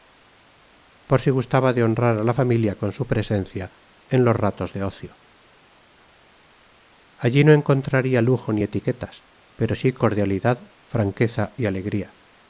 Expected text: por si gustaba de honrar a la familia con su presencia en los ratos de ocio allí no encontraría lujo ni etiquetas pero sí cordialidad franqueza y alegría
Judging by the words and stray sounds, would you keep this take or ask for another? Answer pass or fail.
pass